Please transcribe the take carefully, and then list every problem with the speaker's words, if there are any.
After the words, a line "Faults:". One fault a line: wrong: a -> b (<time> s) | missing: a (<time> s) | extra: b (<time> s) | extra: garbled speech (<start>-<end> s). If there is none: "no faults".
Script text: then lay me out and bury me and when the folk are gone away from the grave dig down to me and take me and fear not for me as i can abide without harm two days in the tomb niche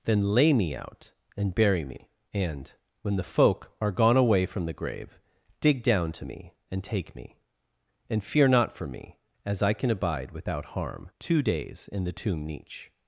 then lay me out and bury me and when the folk are gone away from the grave dig down to me and take me and fear not for me as i can abide without harm two days in the tomb niche
Faults:
no faults